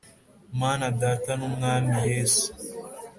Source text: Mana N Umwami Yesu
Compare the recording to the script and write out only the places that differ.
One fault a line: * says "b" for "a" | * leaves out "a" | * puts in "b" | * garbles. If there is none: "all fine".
* puts in "Data"